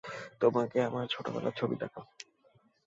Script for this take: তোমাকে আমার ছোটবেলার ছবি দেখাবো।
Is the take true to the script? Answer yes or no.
yes